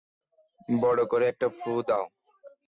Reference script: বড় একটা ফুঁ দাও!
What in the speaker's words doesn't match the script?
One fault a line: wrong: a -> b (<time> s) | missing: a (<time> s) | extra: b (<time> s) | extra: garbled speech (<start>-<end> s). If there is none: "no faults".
extra: করে (1.1 s)